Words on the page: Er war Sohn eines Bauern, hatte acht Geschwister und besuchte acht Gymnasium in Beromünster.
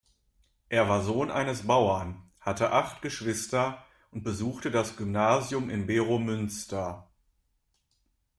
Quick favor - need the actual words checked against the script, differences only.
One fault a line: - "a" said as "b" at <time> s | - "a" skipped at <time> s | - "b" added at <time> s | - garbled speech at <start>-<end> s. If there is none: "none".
- "acht" said as "das" at 4.7 s